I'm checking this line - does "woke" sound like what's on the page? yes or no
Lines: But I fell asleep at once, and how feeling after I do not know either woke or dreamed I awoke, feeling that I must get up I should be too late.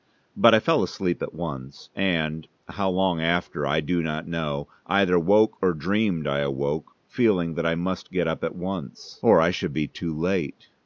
yes